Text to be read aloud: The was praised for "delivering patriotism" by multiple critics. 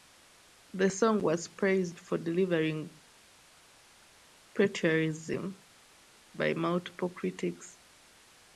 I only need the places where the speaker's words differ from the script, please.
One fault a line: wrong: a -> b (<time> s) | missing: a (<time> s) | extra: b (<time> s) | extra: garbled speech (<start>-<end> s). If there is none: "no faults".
extra: song (0.9 s)